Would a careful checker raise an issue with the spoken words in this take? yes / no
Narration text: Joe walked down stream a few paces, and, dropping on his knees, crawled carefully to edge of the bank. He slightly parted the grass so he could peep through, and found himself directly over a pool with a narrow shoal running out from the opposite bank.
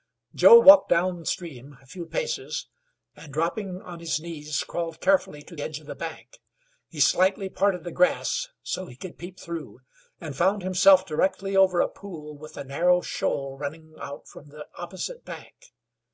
no